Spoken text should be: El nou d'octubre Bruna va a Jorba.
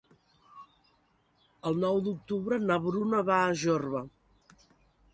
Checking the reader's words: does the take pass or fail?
fail